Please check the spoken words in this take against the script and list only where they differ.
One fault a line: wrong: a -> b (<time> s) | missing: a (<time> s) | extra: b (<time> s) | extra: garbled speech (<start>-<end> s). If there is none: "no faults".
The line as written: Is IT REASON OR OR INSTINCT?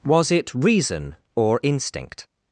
wrong: Is -> WAS (0.0 s)
missing: OR (1.6 s)